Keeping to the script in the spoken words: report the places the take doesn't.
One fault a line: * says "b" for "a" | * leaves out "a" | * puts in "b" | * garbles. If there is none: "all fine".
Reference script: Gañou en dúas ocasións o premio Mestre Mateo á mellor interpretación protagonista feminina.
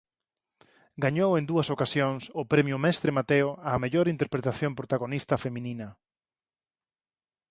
all fine